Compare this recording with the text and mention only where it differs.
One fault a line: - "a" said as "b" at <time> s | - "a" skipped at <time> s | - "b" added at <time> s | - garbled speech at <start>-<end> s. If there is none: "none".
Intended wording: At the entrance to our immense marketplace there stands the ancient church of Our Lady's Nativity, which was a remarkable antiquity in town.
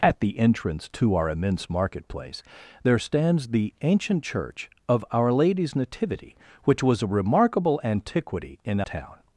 none